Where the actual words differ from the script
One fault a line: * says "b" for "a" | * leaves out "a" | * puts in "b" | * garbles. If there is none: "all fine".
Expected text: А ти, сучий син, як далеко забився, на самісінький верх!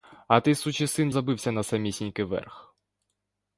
* leaves out "як далеко"